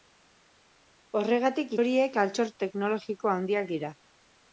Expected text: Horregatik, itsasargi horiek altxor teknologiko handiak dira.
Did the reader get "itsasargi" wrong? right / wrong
wrong